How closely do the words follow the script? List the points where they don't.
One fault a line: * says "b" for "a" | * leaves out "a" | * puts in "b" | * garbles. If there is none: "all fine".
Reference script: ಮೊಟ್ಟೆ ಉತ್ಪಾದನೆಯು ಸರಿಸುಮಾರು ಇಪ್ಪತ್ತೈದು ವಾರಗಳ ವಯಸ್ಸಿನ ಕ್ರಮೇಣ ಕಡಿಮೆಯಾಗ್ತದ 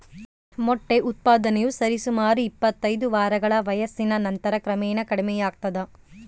* puts in "ನಂತರ"